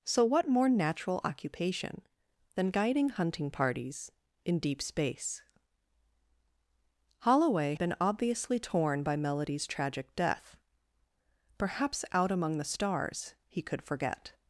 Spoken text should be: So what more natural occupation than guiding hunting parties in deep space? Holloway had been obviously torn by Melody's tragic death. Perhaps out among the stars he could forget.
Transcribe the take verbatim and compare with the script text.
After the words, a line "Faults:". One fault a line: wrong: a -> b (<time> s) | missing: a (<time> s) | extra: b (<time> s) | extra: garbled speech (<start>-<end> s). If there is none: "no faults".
So what more natural occupation than guiding hunting parties in deep space? Holloway been obviously torn by Melody's tragic death. Perhaps out among the stars he could forget.
Faults:
missing: had (7.8 s)